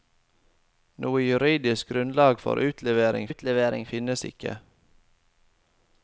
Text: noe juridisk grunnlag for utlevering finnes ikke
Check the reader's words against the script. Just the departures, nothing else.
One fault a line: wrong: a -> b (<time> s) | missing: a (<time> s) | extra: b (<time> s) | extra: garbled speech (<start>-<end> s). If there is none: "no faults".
extra: utlevering (3.3 s)